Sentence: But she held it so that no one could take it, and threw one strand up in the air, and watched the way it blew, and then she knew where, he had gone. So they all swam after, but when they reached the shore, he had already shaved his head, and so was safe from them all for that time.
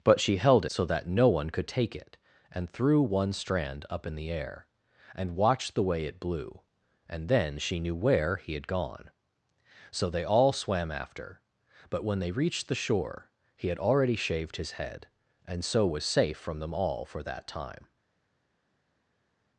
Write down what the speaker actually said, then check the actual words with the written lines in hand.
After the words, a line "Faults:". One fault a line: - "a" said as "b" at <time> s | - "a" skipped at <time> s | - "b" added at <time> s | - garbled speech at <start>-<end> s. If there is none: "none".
But she held so that no one could take it, and threw one strand up in the air, and watched the way it blew, and then she knew where, he had gone. So they all swam after, but when they reached the shore, he had already shaved his head, and so was safe from them all for that time.
Faults:
- "it" skipped at 0.7 s